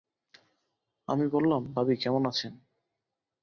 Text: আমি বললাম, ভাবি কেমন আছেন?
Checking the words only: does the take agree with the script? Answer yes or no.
yes